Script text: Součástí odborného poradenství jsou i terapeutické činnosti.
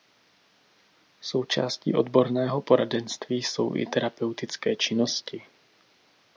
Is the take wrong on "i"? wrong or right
right